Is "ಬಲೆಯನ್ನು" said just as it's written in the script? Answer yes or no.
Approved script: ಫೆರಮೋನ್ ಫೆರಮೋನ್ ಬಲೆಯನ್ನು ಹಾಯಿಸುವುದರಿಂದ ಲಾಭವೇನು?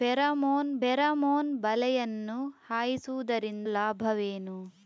yes